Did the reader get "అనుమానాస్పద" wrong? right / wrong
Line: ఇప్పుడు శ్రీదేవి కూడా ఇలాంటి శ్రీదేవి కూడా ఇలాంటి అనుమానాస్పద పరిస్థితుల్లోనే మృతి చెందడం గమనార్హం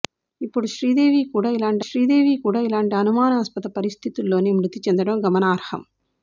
right